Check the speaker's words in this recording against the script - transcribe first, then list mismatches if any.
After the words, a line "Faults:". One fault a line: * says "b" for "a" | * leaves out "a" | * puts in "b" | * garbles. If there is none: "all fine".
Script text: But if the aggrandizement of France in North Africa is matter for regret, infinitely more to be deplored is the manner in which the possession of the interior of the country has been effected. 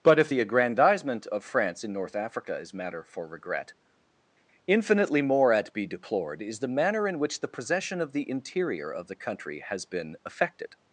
But if the aggrandizement of France in North Africa is matter for regret, infinitely more at be deplored is the manner in which the possession of the interior of the country has been effected.
Faults:
* says "at" for "to"